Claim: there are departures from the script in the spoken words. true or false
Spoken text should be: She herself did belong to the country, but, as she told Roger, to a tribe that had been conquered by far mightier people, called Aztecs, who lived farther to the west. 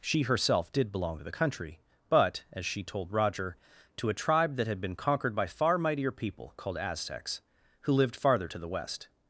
false